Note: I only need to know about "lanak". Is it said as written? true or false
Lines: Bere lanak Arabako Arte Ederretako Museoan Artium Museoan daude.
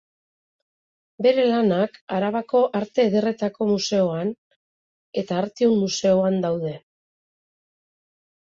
true